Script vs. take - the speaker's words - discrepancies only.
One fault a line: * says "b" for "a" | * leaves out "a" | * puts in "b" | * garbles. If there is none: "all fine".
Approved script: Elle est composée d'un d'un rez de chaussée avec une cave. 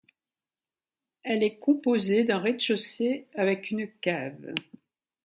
* leaves out "d'un"